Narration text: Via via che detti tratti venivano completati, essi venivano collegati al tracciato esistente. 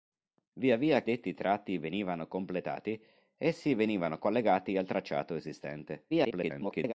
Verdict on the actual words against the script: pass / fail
fail